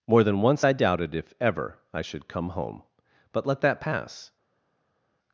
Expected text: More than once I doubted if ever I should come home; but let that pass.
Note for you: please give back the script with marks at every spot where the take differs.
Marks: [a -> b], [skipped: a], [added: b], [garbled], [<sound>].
More than once I doubted if ever I should come home; but let that pass.